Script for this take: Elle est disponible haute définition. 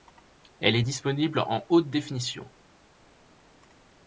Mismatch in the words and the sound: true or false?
true